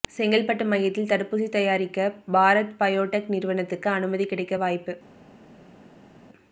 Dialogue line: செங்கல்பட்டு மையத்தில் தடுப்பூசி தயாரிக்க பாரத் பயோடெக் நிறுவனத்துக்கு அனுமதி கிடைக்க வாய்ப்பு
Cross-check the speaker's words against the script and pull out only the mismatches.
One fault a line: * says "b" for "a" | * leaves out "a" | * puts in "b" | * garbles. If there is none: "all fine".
all fine